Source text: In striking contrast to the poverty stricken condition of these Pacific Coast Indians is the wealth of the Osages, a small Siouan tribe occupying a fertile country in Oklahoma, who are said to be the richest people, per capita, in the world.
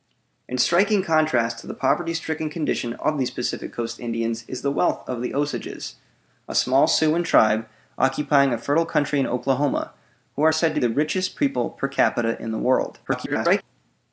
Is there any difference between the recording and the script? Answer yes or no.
yes